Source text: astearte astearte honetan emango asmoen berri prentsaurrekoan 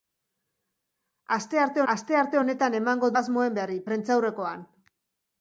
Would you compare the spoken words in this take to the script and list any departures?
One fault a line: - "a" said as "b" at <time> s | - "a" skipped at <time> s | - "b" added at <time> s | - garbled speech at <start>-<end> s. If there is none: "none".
none